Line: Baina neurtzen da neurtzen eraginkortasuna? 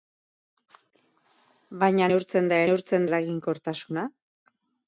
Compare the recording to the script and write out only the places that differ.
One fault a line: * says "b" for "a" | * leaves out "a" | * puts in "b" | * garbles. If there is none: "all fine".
all fine